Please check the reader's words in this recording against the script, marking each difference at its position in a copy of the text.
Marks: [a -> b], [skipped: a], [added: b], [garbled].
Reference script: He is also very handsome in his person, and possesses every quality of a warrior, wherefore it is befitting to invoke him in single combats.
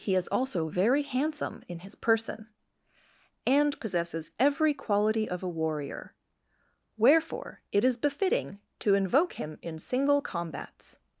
He is also very handsome in his person, and possesses every quality of a warrior, wherefore it is befitting to invoke him in single combats.